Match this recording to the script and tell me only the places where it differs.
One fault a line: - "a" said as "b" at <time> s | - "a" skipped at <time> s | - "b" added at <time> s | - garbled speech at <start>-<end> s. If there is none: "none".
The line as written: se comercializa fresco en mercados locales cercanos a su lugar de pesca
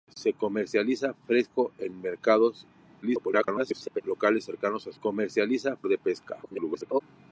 - garbled speech at 3.0-4.0 s
- "lugar" said as "comercializa" at 5.0 s
- garbled speech at 6.4-7.0 s